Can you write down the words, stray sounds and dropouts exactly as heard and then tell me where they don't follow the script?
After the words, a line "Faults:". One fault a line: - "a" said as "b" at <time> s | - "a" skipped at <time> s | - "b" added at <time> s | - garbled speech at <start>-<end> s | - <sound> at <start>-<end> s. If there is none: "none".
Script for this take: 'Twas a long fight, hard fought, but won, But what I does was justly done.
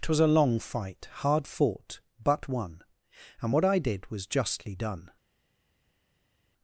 'Twas a long fight, hard fought, but won, And what I did was justly done.
Faults:
- "But" said as "And" at 3.4 s
- "does" said as "did" at 3.8 s